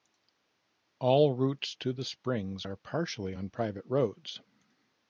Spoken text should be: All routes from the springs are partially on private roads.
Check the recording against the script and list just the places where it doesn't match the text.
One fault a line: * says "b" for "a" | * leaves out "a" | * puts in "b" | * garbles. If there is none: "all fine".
* says "to" for "from"